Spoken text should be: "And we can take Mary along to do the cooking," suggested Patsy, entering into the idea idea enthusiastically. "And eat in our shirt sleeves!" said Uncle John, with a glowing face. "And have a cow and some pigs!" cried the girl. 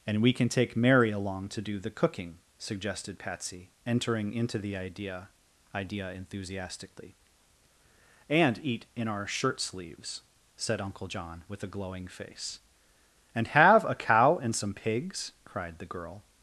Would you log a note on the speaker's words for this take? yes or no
no